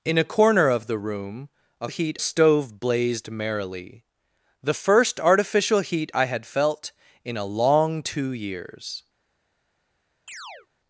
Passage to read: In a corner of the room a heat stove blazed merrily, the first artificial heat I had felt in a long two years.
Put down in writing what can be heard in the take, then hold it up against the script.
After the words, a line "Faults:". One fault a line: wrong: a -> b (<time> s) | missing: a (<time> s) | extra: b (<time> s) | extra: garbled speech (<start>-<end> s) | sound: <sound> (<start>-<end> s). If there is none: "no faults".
In a corner of the room a heat stove blazed merrily, the first artificial heat I had felt in a long two years.
Faults:
sound: chirp (10.3-10.7 s)